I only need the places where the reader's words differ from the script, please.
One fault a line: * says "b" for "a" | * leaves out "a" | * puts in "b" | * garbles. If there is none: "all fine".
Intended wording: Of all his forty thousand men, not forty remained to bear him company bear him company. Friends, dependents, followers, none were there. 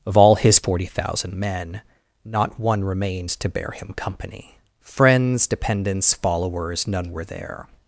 * says "one" for "forty"
* leaves out "bear him company"